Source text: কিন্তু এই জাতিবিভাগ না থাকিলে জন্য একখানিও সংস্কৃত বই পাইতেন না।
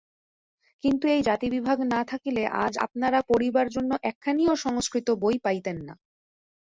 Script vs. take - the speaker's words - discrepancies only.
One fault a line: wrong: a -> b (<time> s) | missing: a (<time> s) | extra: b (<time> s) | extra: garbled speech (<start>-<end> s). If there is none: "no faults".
extra: আজ আপনারা পড়িবার (2.6 s)